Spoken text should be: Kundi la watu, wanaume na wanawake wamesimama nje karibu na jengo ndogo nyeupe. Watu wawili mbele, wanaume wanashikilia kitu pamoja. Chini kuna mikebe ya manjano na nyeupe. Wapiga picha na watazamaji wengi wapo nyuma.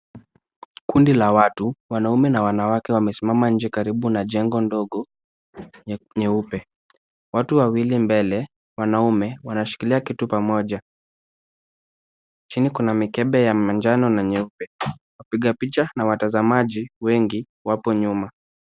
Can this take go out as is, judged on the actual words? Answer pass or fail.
pass